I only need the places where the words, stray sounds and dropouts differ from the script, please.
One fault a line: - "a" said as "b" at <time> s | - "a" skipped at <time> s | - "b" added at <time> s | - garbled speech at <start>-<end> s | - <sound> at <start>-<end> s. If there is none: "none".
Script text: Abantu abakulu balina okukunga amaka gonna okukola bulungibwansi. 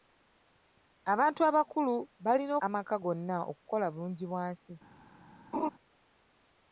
- "okukunga" skipped at 2.5 s
- laugh at 5.5-5.7 s